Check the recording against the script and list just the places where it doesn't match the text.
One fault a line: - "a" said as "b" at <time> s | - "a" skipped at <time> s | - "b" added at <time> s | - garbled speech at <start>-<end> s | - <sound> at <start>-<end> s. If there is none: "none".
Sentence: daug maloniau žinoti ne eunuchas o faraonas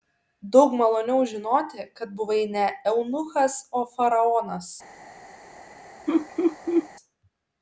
- "kad buvai" added at 2.0 s
- laugh at 6.1-6.9 s